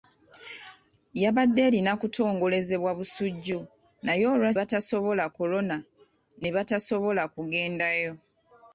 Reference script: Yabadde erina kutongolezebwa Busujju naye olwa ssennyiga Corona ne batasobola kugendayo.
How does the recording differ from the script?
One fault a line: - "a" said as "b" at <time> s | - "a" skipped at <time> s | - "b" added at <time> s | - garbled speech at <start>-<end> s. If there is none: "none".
- "ssennyiga" said as "batasobola" at 4.6 s